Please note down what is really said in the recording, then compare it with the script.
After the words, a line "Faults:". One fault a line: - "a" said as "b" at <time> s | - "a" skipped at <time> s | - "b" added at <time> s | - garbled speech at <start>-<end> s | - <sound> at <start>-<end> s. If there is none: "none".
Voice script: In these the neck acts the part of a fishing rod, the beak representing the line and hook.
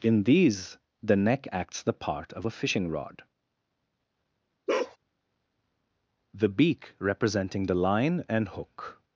In these the neck acts the part of a fishing rod, the beak representing the line and hook.
Faults:
- bark at 4.7-5.0 s